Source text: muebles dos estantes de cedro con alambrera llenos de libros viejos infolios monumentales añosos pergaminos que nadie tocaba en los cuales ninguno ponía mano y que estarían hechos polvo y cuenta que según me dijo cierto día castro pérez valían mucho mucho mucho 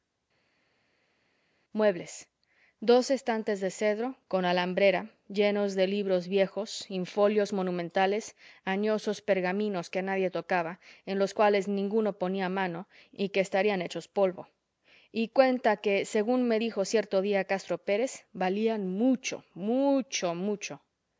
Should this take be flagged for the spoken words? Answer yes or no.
no